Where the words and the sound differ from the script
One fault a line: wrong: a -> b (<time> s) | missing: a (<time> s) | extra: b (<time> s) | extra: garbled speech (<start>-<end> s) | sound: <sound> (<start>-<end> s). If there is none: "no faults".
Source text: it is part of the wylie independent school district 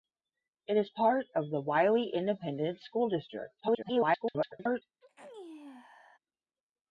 extra: garbled speech (3.6-4.8 s)
sound: sneeze (5.0-6.2 s)